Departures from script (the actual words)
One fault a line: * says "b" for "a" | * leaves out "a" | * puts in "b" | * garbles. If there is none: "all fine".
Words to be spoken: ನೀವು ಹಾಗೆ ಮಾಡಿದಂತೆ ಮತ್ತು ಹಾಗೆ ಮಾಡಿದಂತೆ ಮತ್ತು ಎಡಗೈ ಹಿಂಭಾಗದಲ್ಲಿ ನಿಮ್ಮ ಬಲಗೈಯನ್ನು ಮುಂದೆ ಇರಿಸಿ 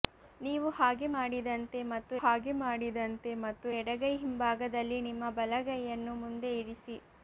all fine